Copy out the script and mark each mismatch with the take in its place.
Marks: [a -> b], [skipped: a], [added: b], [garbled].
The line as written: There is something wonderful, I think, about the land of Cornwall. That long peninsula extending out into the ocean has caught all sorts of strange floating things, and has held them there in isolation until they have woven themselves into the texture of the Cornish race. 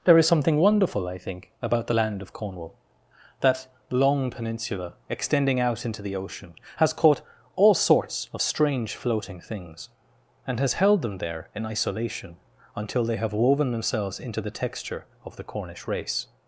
There is something wonderful, I think, about the land of Cornwall. That long peninsula extending out into the ocean has caught all sorts of strange floating things, and has held them there in isolation until they have woven themselves into the texture of the Cornish race.